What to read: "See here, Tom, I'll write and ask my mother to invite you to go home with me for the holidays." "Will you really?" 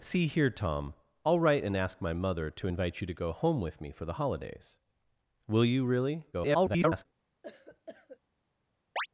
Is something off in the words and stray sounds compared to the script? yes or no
yes